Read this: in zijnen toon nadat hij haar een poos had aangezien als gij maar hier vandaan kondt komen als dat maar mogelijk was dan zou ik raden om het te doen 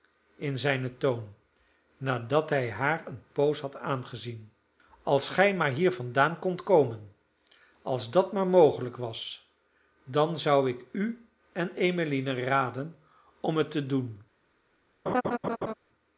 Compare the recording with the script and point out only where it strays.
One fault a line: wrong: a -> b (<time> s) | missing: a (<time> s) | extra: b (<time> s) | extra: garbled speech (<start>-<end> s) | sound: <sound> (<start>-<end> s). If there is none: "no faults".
extra: u en emmeline (10.9 s)
sound: laugh (15.1-15.7 s)